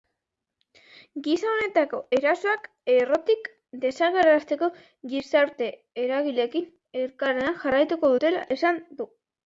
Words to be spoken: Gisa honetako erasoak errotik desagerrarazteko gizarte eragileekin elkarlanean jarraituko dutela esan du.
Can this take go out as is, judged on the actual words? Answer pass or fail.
pass